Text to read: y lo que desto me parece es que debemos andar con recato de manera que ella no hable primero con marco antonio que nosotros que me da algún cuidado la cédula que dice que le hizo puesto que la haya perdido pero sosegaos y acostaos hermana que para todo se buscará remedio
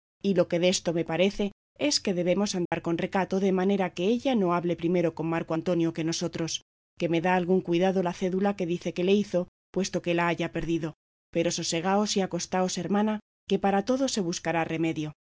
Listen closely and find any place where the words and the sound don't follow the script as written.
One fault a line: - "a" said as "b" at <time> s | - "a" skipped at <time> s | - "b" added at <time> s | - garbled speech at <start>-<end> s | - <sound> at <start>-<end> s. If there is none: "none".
- dropout at 2.7-2.7 s